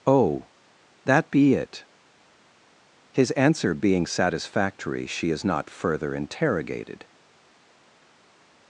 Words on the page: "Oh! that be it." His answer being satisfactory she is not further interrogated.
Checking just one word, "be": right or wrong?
right